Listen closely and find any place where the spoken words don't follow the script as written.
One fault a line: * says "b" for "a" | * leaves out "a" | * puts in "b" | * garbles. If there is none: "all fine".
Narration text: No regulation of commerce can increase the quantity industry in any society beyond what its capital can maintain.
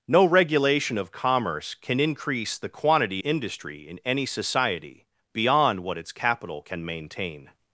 all fine